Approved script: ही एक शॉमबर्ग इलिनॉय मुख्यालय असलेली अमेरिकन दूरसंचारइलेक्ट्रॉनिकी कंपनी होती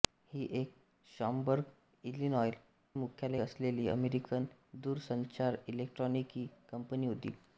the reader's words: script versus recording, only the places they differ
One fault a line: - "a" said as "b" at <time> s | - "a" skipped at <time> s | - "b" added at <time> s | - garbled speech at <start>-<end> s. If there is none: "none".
none